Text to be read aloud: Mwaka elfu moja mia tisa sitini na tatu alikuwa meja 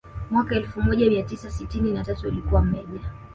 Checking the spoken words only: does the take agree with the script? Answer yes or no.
yes